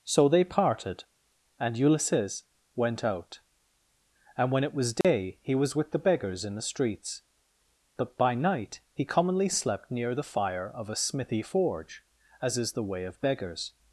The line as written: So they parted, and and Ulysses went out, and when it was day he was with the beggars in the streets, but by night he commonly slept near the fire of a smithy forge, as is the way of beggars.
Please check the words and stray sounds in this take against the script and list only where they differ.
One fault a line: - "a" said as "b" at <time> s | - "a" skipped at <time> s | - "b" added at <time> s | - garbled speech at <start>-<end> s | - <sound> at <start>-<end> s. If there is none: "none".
- "and" skipped at 1.8 s
- dropout at 5.0-5.0 s